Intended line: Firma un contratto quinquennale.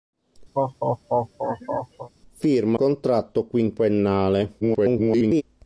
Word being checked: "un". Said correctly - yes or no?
no